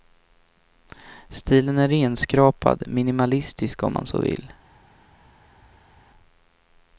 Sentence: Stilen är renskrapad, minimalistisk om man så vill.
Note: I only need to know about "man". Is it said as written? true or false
true